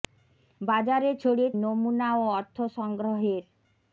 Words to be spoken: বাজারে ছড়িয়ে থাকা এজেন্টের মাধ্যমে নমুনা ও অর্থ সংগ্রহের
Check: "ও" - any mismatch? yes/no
no